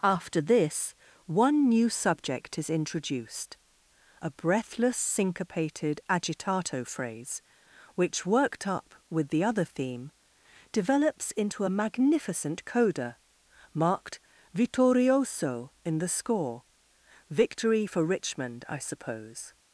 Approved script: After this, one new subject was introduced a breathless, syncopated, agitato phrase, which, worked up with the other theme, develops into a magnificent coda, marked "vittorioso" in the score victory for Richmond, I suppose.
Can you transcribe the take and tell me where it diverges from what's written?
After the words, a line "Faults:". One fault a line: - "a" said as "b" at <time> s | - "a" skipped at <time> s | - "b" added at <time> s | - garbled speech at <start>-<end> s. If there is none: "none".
After this, one new subject is introduced a breathless, syncopated, agitato phrase, which, worked up with the other theme, develops into a magnificent coda, marked "vittorioso" in the score victory for Richmond, I suppose.
Faults:
- "was" said as "is" at 2.6 s